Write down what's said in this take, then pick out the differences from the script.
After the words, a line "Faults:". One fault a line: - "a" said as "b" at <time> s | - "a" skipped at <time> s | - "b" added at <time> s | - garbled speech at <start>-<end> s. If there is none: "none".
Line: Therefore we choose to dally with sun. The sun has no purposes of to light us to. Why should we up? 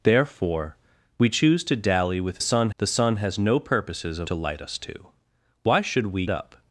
Therefore we choose to dally with sun. The sun has no purposes of to light us to. Why should we up?
Faults:
none